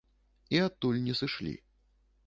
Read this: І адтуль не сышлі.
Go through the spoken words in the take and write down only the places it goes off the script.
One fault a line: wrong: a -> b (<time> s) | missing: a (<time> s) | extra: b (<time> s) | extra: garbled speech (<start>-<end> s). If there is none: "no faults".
no faults